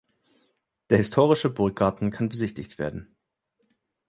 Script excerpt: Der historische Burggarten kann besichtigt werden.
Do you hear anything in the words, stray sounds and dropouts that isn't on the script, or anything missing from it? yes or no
no